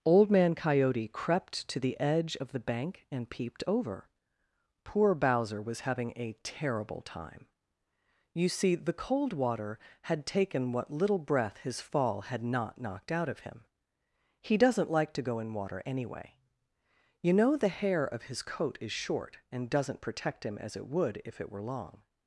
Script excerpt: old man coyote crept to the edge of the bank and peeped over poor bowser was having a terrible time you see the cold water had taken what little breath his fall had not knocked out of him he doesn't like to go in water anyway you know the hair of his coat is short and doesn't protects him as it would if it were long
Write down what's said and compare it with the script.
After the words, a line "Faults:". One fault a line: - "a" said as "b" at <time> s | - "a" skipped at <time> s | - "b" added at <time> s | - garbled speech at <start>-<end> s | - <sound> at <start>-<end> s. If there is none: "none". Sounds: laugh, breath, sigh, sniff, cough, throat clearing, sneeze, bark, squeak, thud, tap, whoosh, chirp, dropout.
old man coyote crept to the edge of the bank and peeped over poor bowser was having a terrible time you see the cold water had taken what little breath his fall had not knocked out of him he doesn't like to go in water anyway you know the hair of his coat is short and doesn't protect him as it would if it were long
Faults:
- "protects" said as "protect" at 20.0 s